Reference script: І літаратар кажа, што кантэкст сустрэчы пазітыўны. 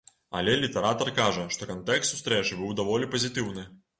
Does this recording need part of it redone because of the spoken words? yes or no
yes